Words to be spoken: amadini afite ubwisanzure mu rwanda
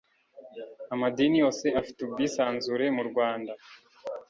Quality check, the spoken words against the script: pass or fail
fail